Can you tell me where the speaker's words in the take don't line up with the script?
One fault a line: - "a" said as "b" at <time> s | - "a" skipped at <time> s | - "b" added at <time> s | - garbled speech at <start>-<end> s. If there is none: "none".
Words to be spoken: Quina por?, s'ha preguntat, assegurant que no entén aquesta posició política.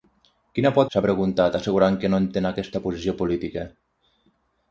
none